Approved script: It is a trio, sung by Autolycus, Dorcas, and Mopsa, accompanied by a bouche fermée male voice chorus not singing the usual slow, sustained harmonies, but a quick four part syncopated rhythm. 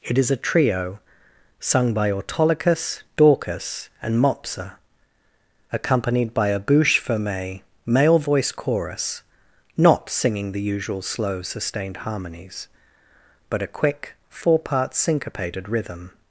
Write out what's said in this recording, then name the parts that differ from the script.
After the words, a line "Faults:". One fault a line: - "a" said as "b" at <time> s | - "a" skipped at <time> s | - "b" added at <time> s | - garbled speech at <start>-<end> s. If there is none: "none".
It is a trio, sung by Autolycus, Dorcas, and Mopsa, accompanied by a bouche fermée male voice chorus not singing the usual slow, sustained harmonies, but a quick four part syncopated rhythm.
Faults:
none